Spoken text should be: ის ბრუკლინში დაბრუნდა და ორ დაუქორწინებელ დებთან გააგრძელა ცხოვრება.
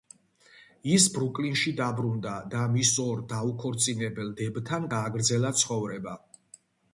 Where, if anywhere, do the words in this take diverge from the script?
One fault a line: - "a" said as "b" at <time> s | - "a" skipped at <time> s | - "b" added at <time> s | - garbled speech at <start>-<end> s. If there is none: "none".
- "მის" added at 2.7 s